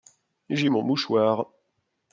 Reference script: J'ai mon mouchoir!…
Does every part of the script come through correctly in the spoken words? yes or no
yes